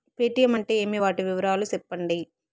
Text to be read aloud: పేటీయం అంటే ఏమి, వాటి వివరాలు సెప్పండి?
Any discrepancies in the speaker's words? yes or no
no